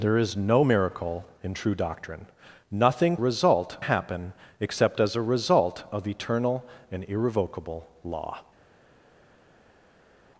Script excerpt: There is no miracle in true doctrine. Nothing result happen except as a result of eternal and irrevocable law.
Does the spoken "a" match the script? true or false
true